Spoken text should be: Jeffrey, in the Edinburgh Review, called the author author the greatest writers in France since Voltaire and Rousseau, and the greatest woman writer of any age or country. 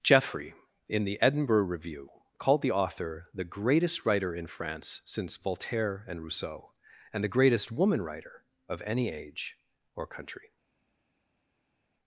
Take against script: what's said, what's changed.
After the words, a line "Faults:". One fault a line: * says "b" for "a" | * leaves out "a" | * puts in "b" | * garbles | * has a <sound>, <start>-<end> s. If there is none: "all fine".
Jeffrey, in the Edinburgh Review, called the author the greatest writer in France since Voltaire and Rousseau, and the greatest woman writer of any age or country.
Faults:
* leaves out "author"
* says "writer" for "writers"